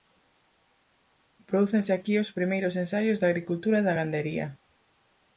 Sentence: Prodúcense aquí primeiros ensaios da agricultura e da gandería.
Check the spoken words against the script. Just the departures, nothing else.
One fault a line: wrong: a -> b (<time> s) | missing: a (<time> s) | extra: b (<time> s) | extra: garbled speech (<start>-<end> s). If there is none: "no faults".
extra: os (2.2 s)